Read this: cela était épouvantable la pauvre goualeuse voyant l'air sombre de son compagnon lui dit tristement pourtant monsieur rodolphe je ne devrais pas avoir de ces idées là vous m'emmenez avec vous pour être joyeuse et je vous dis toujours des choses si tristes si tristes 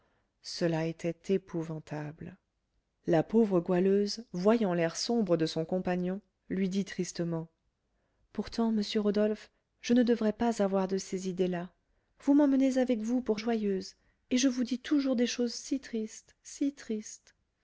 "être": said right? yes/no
no